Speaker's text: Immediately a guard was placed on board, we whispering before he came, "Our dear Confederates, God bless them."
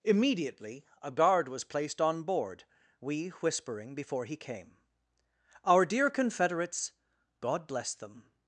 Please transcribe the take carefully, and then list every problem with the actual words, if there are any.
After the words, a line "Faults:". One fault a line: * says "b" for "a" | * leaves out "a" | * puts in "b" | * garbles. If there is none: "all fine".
Immediately a guard was placed on board, we whispering before he came, "Our dear Confederates, God bless them."
Faults:
all fine